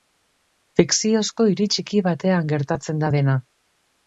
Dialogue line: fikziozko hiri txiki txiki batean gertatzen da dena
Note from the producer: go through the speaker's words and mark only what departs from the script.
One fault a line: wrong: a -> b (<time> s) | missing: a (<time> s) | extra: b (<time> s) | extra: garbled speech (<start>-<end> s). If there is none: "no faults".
missing: txiki (2.0 s)